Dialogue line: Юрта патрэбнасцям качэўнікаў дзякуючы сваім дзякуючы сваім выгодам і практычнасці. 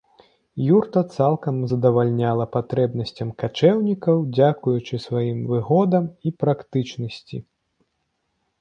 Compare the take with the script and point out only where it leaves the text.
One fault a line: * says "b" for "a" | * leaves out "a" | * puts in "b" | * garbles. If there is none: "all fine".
* puts in "цалкам задавальняла"
* leaves out "дзякуючы сваім"